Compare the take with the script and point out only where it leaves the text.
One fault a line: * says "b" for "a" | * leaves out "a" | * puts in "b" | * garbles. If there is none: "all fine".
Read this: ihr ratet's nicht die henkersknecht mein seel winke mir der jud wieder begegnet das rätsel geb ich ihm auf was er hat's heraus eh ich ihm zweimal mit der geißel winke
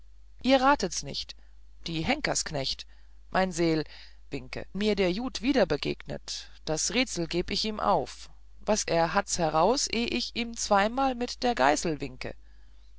all fine